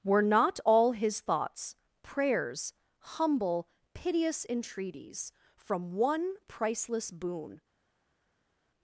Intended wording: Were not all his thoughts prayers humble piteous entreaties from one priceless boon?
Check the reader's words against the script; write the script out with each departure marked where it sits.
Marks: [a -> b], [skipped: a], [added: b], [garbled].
Were not all his thoughts prayers humble piteous entreaties from one priceless boon?